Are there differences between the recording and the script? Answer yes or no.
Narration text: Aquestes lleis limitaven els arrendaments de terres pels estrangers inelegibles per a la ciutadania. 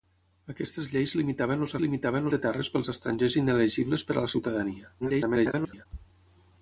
yes